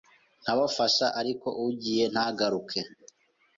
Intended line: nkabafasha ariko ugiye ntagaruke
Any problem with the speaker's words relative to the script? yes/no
no